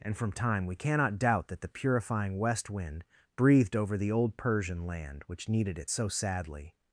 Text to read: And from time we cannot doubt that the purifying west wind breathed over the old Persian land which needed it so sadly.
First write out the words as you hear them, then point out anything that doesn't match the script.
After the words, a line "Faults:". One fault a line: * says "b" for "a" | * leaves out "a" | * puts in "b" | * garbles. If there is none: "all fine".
And from time we cannot doubt that the purifying west wind breathed over the old Persian land which needed it so sadly.
Faults:
all fine